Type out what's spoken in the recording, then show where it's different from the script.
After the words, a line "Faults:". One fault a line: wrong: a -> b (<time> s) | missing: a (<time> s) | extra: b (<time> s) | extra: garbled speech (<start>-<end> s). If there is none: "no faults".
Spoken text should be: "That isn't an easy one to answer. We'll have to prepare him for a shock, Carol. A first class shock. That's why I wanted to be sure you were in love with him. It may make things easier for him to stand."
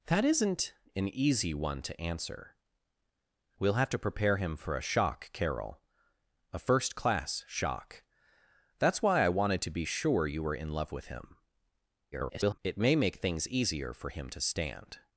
"That isn't an easy one to answer. We'll have to prepare him for a shock, Carol. A first class shock. That's why I wanted to be sure you were in love with him. [garbled] It may make things easier for him to stand."
Faults:
extra: garbled speech (12.1-12.6 s)